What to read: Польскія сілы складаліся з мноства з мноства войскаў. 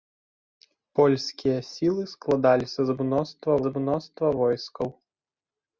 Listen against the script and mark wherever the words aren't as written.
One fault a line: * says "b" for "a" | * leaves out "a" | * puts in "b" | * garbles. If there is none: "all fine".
all fine